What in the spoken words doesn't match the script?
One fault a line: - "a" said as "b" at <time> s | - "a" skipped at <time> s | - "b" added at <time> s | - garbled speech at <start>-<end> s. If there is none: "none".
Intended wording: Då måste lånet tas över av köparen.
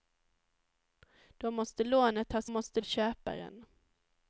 - "över" said as "måste" at 2.5 s